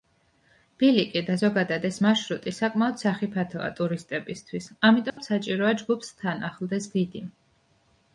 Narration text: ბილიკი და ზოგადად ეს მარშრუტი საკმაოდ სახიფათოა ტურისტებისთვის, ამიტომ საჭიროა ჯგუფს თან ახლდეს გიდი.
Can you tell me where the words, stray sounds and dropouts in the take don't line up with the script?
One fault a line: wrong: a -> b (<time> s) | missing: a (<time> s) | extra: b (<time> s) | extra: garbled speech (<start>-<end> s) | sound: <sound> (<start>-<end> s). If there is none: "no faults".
sound: dropout (5.1-5.2 s)